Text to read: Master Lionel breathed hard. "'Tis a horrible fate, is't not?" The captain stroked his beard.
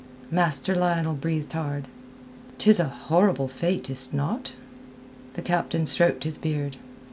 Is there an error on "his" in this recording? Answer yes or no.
no